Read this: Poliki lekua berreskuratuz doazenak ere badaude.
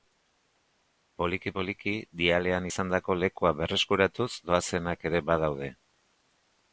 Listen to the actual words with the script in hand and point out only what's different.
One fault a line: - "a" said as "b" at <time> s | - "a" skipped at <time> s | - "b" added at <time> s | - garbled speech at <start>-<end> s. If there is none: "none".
- "poliki dialean izandako" added at 1.6 s